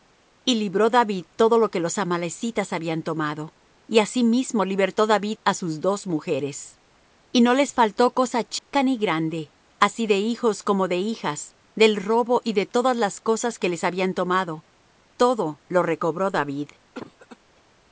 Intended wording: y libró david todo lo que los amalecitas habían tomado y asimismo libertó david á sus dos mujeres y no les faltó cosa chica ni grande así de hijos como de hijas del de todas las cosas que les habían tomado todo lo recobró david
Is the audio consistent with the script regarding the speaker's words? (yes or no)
no